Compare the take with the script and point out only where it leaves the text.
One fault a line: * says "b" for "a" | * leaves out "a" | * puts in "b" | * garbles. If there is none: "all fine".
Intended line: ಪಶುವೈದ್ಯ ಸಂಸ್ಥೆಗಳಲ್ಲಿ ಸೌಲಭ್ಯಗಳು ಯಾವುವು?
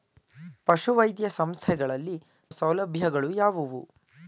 all fine